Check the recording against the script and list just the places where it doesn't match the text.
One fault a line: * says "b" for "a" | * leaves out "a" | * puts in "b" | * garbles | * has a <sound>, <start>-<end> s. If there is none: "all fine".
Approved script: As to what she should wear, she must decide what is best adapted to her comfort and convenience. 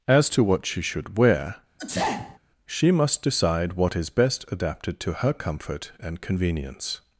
* has a sneeze, 1.8-2.4 s